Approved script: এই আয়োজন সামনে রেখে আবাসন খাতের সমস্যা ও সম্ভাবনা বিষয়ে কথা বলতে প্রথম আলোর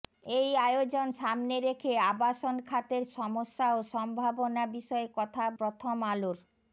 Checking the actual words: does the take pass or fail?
fail